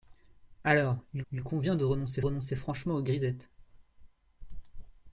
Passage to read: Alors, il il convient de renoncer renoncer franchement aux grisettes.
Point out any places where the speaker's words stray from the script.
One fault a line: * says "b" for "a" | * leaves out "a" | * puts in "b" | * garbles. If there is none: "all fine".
all fine